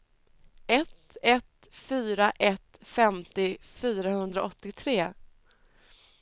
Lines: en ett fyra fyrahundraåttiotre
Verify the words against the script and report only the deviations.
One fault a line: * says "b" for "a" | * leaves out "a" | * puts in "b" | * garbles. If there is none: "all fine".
* says "ett" for "en"
* puts in "ett femtio"